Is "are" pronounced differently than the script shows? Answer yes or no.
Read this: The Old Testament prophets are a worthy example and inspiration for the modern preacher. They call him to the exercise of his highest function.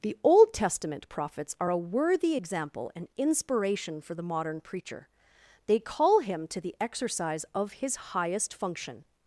no